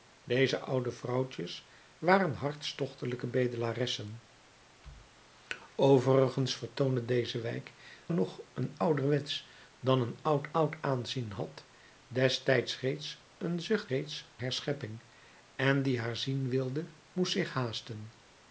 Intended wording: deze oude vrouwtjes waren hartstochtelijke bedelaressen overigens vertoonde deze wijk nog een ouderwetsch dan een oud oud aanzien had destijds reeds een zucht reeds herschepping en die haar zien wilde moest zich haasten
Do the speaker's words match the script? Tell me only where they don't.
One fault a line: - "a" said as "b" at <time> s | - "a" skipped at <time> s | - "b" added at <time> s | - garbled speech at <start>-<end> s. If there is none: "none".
none